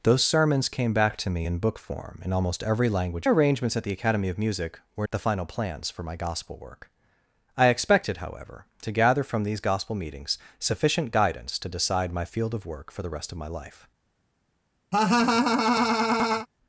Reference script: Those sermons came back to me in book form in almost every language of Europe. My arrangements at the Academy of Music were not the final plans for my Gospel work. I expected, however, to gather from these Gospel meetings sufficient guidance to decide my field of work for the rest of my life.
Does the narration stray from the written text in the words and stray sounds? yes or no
yes